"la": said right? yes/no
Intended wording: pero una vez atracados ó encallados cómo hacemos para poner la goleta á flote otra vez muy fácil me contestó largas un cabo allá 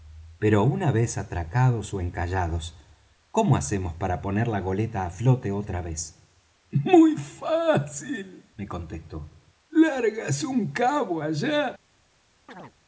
yes